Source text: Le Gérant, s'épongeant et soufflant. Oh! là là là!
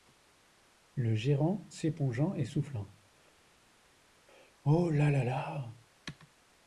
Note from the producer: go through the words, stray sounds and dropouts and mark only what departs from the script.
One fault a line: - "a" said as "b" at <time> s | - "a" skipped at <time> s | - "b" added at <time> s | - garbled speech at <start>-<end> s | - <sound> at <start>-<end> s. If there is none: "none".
none